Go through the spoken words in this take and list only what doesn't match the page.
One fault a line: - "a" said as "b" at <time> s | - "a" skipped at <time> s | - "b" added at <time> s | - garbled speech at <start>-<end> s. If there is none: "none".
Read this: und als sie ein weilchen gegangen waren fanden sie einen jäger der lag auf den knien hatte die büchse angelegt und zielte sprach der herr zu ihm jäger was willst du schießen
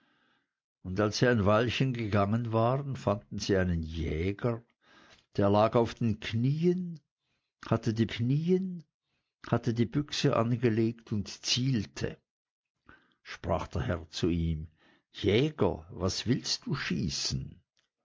- "knien hatte die" added at 8.1 s